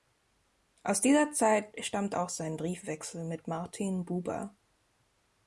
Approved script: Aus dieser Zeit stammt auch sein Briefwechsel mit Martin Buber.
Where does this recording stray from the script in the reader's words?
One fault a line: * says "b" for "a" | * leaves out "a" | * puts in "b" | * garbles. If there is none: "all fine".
all fine